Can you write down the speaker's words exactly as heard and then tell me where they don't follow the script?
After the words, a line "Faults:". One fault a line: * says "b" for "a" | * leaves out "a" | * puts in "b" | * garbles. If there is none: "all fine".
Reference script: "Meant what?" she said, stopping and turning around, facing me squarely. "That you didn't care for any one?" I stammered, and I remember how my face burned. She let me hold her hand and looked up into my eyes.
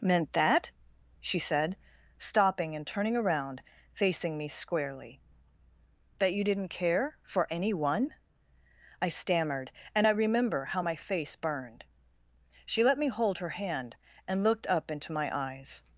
"Meant that?" she said, stopping and turning around, facing me squarely. "That you didn't care for any one?" I stammered, and I remember how my face burned. She let me hold her hand and looked up into my eyes.
Faults:
* says "that" for "what"